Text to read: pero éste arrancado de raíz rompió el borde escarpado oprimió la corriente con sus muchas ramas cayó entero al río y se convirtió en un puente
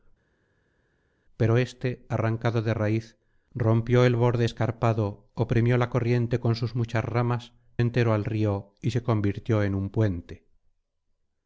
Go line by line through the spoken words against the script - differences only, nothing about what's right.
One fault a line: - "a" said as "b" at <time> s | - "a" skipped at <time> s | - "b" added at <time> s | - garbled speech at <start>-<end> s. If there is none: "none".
- "cayó" skipped at 7.5 s